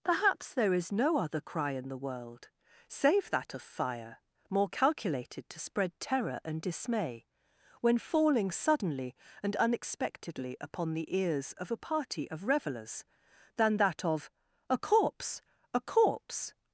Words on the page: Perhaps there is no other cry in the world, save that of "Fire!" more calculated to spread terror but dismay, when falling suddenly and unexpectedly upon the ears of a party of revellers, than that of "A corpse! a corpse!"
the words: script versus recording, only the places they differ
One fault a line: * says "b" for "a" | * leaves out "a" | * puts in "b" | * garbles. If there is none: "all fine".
* says "and" for "but"